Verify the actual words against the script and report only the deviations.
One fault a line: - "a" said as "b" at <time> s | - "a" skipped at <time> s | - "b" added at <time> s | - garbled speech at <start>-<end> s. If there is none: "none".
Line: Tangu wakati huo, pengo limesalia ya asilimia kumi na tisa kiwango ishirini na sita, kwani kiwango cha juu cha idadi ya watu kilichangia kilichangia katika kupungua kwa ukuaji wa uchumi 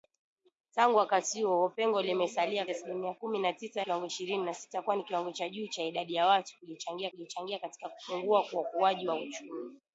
none